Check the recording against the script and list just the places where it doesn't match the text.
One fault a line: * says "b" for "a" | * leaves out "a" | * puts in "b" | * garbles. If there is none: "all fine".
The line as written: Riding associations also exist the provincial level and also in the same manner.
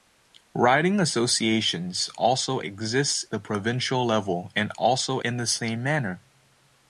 all fine